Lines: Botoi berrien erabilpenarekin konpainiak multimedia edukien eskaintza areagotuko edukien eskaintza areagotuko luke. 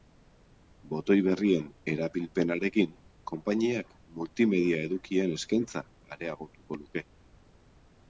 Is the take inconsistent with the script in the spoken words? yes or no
yes